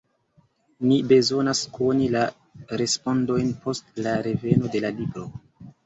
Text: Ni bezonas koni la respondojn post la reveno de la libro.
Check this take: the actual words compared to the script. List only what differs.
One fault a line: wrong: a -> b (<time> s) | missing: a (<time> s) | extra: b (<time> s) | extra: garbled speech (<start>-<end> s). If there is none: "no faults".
no faults